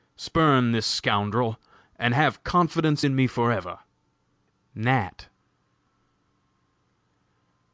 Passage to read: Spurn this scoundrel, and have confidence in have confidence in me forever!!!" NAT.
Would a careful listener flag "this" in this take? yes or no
no